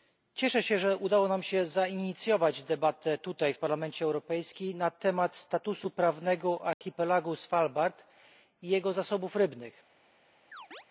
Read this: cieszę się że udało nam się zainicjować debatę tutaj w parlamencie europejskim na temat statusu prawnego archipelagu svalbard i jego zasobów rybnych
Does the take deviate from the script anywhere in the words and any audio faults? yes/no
yes